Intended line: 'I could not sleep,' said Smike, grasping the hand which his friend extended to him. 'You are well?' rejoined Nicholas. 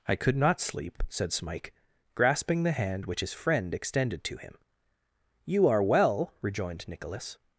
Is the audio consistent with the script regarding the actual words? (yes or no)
yes